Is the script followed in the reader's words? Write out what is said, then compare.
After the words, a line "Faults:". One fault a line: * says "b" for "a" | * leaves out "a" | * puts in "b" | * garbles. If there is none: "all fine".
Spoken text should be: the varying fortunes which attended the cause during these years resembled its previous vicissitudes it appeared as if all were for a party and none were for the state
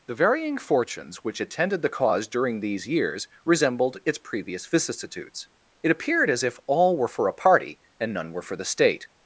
the varying fortunes which attended the cause during these years resembled its previous vicissitudes it appeared as if all were for a party and none were for the state
Faults:
all fine